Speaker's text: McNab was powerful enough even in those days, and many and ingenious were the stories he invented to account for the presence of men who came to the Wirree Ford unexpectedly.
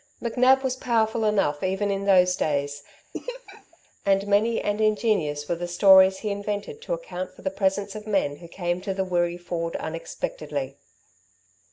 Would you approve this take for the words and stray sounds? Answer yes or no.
no